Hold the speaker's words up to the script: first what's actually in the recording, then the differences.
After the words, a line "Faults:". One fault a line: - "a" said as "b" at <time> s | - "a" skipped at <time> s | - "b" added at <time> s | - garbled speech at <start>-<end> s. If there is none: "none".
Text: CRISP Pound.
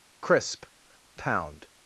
CRISP Pound.
Faults:
none